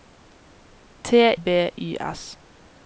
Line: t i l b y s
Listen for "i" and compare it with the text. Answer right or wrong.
wrong